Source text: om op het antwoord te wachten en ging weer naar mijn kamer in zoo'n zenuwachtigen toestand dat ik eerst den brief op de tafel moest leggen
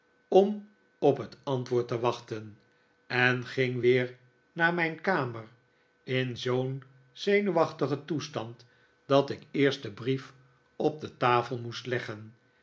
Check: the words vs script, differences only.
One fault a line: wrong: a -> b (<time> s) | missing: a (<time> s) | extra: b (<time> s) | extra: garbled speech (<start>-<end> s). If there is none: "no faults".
no faults